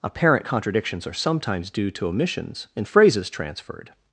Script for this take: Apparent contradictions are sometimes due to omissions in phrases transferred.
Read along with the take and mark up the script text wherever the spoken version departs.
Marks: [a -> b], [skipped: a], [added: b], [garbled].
Apparent contradictions are sometimes due to omissions in phrases transferred.